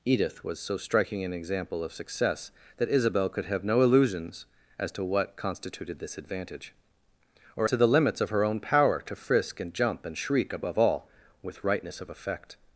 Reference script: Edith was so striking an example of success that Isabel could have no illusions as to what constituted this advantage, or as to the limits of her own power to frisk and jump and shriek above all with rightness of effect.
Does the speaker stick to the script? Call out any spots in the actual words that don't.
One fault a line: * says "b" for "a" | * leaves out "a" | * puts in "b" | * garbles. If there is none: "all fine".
* leaves out "as"